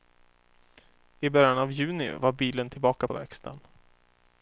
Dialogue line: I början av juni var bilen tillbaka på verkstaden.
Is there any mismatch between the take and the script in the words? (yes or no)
no